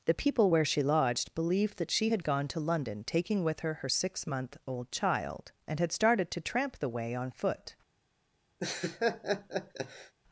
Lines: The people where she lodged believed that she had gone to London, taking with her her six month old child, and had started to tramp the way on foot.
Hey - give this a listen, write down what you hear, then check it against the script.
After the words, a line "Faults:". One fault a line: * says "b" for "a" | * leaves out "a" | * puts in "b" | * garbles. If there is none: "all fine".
The people where she lodged believed that she had gone to London, taking with her her six month old child, and had started to tramp the way on foot.
Faults:
all fine